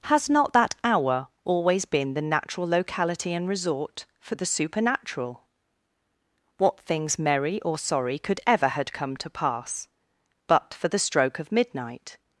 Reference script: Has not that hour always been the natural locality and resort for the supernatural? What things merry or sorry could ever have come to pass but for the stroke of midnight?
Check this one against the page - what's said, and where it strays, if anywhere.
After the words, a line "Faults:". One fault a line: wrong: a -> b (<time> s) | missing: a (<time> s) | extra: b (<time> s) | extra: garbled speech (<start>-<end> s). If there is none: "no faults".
Has not that hour always been the natural locality and resort for the supernatural? What things merry or sorry could ever had come to pass but for the stroke of midnight?
Faults:
wrong: have -> had (8.7 s)